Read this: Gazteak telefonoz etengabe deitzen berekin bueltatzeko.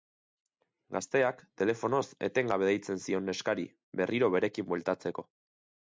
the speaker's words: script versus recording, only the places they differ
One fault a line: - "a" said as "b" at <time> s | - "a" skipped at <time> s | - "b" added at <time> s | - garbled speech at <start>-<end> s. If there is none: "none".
- "zion neskari berriro" added at 3.0 s